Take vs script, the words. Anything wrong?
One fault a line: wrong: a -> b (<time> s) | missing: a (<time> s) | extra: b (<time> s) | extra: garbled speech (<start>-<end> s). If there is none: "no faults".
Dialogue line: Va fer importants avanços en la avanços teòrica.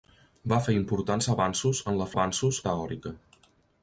no faults